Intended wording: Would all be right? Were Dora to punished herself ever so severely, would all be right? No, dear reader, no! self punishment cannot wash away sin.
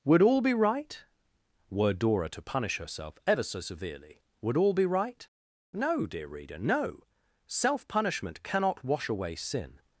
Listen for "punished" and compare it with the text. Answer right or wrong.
wrong